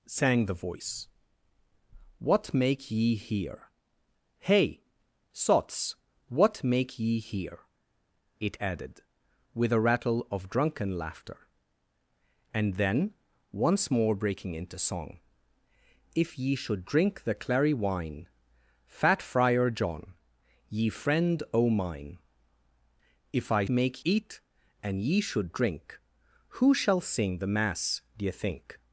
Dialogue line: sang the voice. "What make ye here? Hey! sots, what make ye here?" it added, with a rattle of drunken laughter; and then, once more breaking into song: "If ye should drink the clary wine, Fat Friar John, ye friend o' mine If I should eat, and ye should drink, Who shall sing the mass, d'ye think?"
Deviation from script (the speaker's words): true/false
true